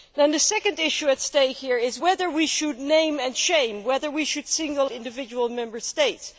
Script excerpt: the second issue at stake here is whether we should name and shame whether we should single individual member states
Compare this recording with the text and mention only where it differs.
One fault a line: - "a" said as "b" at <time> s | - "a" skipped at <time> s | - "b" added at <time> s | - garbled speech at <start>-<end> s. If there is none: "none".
none